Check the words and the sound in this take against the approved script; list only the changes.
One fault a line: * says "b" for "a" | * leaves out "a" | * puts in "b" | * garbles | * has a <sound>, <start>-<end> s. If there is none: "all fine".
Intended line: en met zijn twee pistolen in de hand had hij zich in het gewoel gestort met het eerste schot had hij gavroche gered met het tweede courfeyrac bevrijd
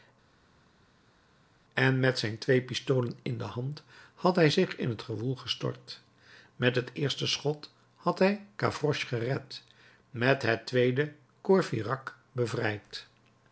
all fine